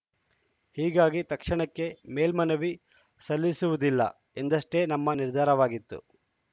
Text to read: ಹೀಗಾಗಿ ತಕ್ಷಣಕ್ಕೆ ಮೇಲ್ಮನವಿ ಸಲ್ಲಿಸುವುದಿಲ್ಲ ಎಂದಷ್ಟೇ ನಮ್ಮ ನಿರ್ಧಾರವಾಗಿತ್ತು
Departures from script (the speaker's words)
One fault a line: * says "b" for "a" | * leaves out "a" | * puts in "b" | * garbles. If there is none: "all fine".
all fine